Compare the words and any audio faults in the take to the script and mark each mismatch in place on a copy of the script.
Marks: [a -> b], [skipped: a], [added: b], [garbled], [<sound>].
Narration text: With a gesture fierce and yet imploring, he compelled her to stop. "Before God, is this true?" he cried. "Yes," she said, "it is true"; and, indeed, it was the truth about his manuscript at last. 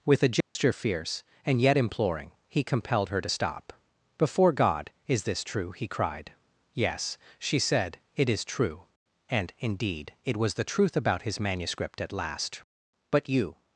With a gesture [dropout] fierce and yet imploring, he compelled her to stop. "Before God, is this true?" he cried. "Yes," she said, "it is true"; and, indeed, it was the truth about his manuscript at last. [added: But you]